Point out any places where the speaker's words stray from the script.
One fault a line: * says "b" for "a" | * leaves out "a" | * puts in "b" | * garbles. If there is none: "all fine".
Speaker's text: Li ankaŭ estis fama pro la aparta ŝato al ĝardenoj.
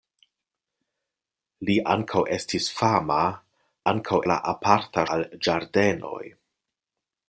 * says "ankaŭ" for "pro"
* leaves out "ŝato"